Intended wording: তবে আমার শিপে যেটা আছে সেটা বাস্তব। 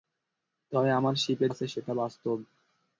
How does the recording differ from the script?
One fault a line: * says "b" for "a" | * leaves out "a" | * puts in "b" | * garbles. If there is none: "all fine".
* leaves out "যেটা"